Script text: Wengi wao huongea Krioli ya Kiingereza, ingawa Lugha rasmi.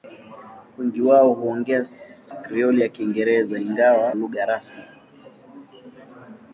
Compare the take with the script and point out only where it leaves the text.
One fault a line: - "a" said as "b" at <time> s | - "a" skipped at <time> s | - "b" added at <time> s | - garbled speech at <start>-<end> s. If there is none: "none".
none